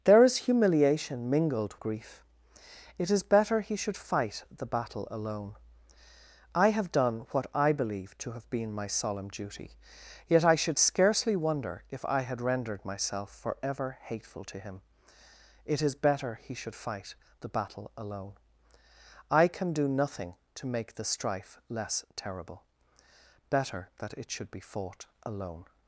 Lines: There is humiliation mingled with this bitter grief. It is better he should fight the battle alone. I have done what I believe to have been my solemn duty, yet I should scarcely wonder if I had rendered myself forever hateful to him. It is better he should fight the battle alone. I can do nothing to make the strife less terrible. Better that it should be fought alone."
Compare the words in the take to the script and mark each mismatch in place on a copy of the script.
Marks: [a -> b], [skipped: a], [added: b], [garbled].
There is humiliation mingled [skipped: with this bitter] grief. It is better he should fight the battle alone. I have done what I believe to have been my solemn duty, yet I should scarcely wonder if I had rendered myself forever hateful to him. It is better he should fight the battle alone. I can do nothing to make the strife less terrible. Better that it should be fought alone."